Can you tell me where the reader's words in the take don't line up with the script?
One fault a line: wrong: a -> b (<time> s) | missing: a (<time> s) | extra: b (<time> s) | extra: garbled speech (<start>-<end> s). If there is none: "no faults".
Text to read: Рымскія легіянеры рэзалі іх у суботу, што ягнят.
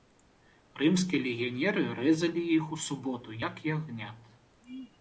wrong: што -> як (3.5 s)